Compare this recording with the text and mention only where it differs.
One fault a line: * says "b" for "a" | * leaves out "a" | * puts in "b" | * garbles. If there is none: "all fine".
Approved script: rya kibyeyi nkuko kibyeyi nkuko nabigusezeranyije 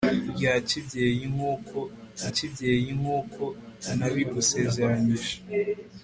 all fine